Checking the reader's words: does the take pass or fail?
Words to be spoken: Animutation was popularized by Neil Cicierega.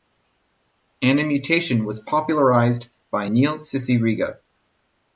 pass